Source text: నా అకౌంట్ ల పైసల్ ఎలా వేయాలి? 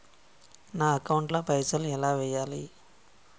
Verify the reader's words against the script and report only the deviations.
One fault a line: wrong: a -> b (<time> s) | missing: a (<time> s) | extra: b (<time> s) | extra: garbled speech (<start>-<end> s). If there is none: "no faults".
no faults